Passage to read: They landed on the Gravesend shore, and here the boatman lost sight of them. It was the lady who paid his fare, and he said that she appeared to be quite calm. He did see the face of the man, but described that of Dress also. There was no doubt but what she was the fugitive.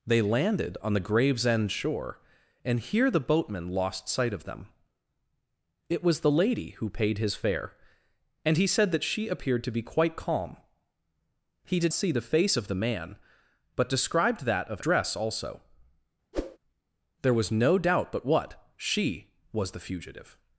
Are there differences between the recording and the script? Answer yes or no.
no